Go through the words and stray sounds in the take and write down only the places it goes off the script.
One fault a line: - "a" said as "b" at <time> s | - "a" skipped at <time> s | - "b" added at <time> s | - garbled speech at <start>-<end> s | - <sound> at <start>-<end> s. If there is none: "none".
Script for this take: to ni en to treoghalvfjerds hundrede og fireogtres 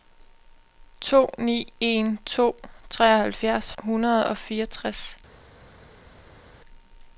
none